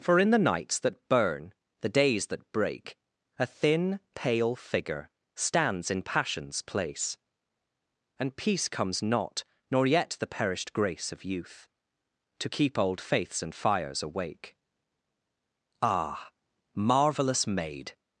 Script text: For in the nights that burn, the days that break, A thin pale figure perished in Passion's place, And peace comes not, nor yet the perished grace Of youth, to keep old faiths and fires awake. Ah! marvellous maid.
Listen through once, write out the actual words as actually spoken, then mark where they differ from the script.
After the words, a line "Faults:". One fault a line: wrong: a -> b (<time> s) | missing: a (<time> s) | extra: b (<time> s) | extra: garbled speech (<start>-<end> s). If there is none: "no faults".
For in the nights that burn, the days that break, A thin pale figure stands in Passion's place, And peace comes not, nor yet the perished grace Of youth, to keep old faiths and fires awake. Ah! marvellous maid.
Faults:
wrong: perished -> stands (5.3 s)